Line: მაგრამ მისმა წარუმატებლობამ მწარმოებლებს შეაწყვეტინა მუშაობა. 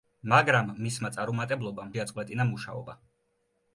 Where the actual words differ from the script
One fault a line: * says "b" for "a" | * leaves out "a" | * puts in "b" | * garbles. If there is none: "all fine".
* leaves out "მწარმოებლებს"